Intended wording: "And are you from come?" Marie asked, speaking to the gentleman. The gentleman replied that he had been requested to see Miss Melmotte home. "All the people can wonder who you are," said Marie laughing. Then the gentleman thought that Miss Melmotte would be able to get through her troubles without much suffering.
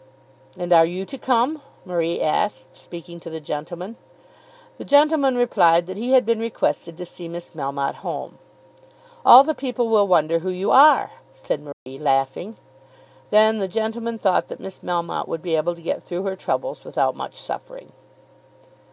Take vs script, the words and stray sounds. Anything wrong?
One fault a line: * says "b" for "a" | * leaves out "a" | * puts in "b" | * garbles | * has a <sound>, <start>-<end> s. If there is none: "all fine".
* says "to" for "from"
* says "will" for "can"
* has a dropout, 11.7-11.9 s